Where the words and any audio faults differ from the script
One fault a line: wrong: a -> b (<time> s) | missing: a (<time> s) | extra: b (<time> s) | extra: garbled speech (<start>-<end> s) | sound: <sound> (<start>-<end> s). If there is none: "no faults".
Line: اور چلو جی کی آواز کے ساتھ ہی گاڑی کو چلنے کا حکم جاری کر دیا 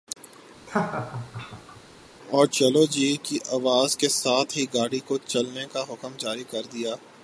sound: laugh (0.7-1.8 s)